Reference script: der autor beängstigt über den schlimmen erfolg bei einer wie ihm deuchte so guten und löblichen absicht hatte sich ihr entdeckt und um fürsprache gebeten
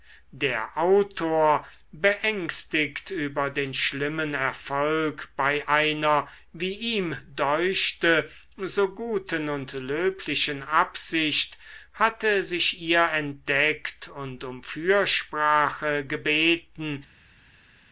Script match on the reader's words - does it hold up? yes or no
yes